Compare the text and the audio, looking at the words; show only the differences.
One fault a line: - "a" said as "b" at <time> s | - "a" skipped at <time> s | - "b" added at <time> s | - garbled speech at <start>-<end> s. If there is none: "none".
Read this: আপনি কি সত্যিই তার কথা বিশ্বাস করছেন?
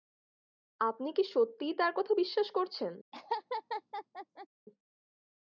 none